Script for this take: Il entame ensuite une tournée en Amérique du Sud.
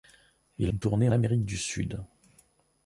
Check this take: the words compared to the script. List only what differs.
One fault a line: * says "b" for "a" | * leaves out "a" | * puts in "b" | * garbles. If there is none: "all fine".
* leaves out "entame ensuite"
* leaves out "en"